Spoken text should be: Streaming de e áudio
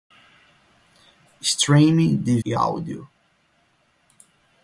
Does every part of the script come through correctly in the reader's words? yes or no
yes